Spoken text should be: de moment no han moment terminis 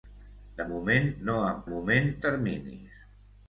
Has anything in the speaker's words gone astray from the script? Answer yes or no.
no